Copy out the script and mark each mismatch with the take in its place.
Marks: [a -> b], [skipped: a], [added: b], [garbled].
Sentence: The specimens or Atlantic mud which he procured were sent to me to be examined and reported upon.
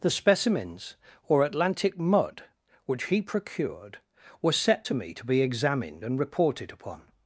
The specimens or Atlantic mud which he procured were [sent -> set] to me to be examined and reported upon.